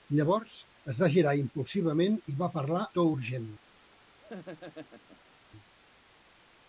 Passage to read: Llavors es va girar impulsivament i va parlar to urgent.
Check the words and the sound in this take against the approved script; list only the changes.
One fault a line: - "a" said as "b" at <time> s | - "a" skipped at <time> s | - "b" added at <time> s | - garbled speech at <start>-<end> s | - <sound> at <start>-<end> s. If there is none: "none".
- laugh at 4.2-5.3 s